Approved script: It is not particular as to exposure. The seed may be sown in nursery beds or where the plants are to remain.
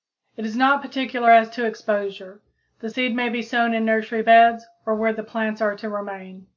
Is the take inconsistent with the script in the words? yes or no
no